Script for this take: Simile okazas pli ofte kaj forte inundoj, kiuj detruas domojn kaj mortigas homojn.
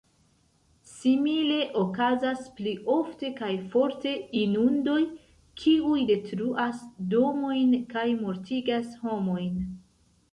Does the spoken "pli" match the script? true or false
true